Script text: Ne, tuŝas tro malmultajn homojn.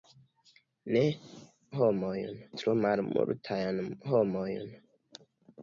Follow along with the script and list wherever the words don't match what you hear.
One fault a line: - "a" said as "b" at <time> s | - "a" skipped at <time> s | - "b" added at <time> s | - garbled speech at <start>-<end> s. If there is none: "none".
- "tuŝas" said as "homojn" at 1.8 s